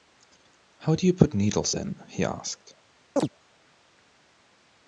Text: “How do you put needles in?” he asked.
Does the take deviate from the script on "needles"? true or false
false